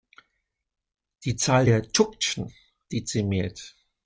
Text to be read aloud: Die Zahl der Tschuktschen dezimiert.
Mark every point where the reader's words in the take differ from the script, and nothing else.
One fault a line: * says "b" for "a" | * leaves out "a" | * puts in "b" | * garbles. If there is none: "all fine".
all fine